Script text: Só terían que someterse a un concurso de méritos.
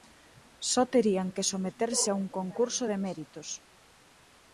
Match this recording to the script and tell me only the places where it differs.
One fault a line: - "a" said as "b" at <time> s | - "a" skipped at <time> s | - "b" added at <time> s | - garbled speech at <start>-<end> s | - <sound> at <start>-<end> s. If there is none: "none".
none